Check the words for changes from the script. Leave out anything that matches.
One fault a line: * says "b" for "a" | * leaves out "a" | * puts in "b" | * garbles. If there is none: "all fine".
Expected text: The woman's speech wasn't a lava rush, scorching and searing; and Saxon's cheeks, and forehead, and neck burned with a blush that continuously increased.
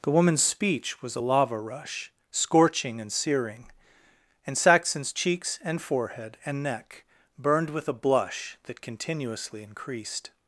* says "was" for "wasn't"